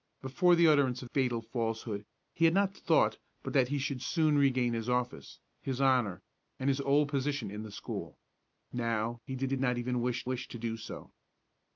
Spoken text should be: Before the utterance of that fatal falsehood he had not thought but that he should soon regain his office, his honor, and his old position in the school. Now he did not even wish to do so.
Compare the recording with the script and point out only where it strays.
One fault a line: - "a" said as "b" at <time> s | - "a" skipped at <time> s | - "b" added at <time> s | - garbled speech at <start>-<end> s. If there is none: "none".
- "that" skipped at 1.1 s
- "did" added at 9.5 s
- "wish" added at 10.3 s